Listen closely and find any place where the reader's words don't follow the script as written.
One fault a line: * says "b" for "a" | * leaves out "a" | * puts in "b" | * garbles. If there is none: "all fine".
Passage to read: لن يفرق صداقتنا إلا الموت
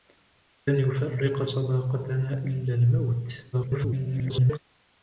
* garbles